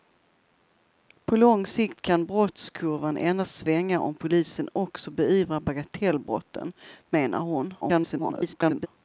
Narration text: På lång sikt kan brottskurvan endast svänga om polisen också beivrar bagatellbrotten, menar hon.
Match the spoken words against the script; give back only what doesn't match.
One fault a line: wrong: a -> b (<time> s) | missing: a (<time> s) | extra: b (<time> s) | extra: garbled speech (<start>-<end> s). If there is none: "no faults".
extra: garbled speech (7.8-8.9 s)